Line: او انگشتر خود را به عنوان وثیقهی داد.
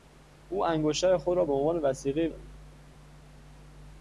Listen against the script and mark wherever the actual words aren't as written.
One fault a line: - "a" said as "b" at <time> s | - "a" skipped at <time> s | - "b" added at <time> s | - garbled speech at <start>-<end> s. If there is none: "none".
none